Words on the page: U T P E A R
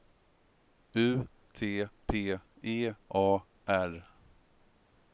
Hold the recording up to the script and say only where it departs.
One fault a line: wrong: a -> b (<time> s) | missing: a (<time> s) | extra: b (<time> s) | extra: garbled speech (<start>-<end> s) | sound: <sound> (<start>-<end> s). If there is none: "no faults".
no faults